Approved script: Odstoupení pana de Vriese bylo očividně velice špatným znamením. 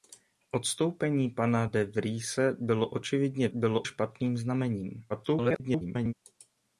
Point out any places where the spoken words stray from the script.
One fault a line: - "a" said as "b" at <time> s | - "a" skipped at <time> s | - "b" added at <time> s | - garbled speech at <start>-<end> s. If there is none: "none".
- "velice" said as "bylo" at 3.5 s
- garbled speech at 5.1-6.1 s